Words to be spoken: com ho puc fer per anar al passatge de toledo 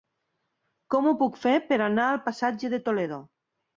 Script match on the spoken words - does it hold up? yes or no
yes